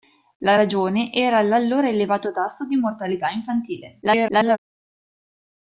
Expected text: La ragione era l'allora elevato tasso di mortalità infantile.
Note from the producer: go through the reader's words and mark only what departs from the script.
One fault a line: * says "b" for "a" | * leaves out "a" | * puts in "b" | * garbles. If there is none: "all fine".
* garbles